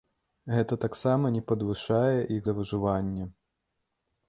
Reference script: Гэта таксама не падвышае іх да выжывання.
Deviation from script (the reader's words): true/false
false